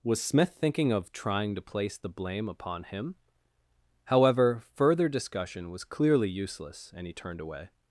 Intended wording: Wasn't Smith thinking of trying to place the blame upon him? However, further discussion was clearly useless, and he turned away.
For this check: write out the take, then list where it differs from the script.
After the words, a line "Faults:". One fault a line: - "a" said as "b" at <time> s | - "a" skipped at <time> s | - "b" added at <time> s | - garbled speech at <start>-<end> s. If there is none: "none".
Was Smith thinking of trying to place the blame upon him? However, further discussion was clearly useless, and he turned away.
Faults:
- "Wasn't" said as "Was" at 0.0 s